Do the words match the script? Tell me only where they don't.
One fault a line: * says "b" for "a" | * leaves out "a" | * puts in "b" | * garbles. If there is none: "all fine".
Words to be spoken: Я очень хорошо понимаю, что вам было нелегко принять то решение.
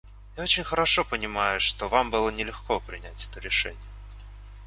* says "это" for "то"